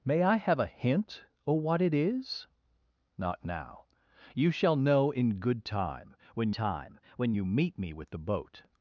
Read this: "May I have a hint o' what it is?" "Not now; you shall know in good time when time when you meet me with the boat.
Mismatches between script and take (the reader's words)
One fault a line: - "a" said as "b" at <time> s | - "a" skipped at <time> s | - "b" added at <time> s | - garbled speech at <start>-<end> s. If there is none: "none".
none